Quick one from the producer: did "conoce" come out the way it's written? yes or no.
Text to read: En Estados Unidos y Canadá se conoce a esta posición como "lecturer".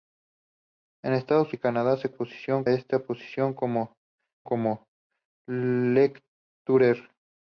no